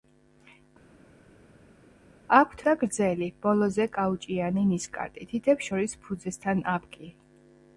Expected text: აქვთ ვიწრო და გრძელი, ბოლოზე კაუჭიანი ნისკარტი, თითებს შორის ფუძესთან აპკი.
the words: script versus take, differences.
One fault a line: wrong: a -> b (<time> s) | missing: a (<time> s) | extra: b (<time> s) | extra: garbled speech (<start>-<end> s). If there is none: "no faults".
missing: ვიწრო (2.6 s)